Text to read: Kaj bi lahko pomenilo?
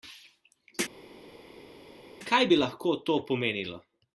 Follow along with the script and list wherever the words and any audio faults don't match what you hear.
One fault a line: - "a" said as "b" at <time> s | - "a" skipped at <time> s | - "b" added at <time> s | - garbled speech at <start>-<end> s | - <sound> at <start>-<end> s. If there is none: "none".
- "to" added at 3.1 s